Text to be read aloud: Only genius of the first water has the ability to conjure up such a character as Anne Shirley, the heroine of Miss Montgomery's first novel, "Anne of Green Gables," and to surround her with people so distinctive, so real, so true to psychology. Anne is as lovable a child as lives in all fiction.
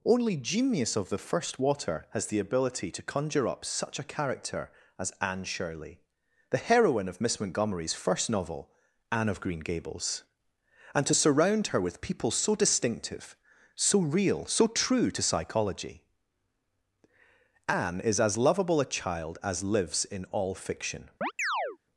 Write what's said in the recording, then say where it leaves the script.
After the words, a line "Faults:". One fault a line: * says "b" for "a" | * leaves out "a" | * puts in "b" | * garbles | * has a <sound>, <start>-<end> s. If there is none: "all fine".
Only genius of the first water has the ability to conjure up such a character as Anne Shirley, the heroine of Miss Montgomery's first novel, "Anne of Green Gables," and to surround her with people so distinctive, so real, so true to psychology. Anne is as lovable a child as lives in all fiction.
Faults:
* has a chirp, 21.2-21.8 s